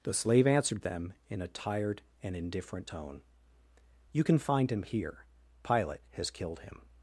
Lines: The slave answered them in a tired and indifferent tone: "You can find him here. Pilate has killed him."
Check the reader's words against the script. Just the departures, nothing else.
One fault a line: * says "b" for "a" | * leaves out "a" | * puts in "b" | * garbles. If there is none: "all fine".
all fine